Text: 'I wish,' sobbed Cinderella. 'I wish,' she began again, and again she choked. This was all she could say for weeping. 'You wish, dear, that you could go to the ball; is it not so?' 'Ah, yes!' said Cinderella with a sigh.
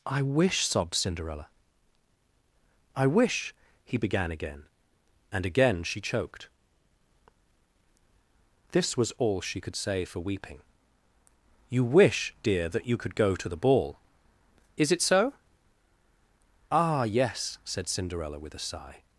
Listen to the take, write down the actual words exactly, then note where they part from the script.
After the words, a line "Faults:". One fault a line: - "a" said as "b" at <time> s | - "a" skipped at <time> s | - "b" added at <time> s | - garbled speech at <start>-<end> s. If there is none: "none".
'I wish,' sobbed Cinderella. 'I wish,' he began again, and again she choked. This was all she could say for weeping. 'You wish, dear, that you could go to the ball; is it so?' 'Ah, yes!' said Cinderella with a sigh.
Faults:
- "she" said as "he" at 3.8 s
- "not" skipped at 15.0 s